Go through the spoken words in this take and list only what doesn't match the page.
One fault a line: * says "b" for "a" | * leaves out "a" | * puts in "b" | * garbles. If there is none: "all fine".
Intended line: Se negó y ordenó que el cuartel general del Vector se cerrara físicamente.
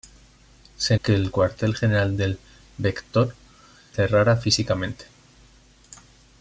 * leaves out "negó y ordenó"
* leaves out "se"